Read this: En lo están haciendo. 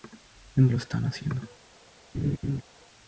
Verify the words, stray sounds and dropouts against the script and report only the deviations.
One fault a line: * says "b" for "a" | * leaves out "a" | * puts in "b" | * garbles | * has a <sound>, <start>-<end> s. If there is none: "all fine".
* has a laugh, 2.1-2.6 s